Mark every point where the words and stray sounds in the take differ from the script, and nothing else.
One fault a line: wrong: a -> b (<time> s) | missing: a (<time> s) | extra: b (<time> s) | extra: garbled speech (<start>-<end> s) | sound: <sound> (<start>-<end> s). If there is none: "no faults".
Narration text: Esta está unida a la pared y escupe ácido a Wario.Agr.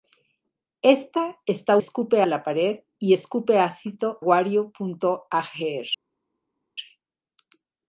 wrong: unida -> escupe (1.8 s)
missing: a (4.2 s)